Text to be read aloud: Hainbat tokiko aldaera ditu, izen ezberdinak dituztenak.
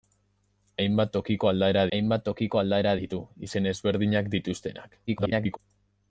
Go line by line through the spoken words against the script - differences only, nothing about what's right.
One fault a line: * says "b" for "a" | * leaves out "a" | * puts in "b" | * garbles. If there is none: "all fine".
* puts in "hainbat tokiko aldaera"
* garbles